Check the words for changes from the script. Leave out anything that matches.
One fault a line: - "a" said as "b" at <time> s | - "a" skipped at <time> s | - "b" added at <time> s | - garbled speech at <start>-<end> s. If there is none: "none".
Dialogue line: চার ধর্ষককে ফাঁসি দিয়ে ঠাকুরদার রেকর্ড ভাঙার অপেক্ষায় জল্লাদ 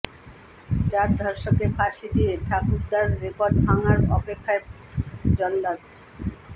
none